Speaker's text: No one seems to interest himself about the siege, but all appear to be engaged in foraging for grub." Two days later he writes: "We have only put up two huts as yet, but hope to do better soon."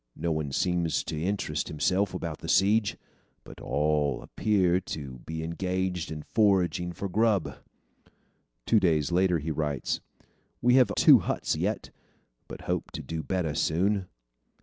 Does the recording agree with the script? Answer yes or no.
no